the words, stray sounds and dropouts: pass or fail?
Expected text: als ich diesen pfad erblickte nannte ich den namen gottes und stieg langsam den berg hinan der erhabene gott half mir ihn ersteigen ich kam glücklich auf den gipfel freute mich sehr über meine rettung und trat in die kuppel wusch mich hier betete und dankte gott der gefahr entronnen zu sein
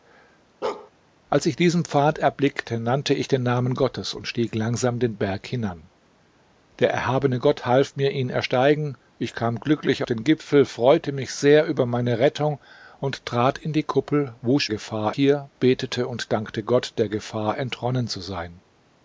fail